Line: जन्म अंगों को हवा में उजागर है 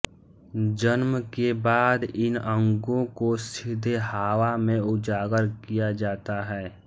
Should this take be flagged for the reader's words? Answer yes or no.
yes